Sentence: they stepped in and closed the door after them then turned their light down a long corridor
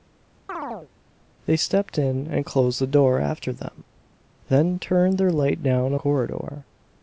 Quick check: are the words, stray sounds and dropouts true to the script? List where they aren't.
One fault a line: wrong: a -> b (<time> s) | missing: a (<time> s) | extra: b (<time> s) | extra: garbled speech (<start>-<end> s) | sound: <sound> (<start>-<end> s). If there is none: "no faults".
sound: chirp (0.5-0.9 s)
missing: long (6.0 s)